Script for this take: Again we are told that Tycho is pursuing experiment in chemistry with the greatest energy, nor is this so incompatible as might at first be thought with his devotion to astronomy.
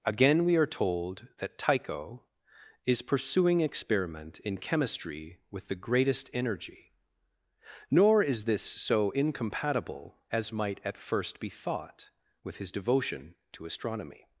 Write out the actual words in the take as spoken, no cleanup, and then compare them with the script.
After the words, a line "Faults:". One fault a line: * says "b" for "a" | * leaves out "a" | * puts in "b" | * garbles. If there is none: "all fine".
Again we are told that Tycho is pursuing experiment in chemistry with the greatest energy, nor is this so incompatible as might at first be thought with his devotion to astronomy.
Faults:
all fine